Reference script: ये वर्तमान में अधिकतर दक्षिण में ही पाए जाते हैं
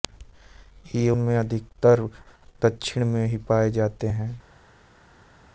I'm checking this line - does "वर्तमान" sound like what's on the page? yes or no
no